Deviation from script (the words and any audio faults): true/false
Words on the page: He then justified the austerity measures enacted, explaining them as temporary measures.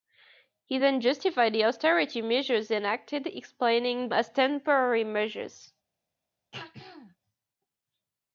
true